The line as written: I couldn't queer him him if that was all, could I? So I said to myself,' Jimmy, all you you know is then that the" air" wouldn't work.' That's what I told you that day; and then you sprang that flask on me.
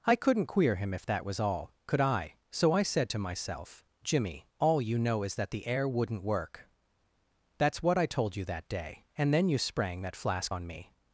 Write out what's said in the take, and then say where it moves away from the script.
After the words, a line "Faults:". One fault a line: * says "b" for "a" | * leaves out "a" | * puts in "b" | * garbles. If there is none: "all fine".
I couldn't queer him if that was all, could I? So I said to myself,' Jimmy, all you know is that the" air" wouldn't work.' That's what I told you that day; and then you sprang that flask on me.
Faults:
* leaves out "him"
* leaves out "you"
* leaves out "then"